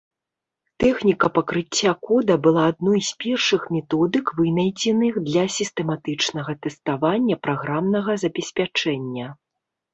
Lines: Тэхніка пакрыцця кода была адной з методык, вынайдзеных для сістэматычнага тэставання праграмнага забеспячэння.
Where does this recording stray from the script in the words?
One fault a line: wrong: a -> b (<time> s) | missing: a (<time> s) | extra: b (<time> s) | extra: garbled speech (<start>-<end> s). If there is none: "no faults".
extra: першых (3.2 s)